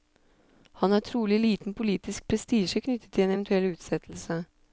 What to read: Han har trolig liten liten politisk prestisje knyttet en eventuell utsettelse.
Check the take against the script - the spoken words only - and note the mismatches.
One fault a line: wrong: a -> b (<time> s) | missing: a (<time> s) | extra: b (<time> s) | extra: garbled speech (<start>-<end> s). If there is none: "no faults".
missing: liten (1.7 s)
extra: til (3.1 s)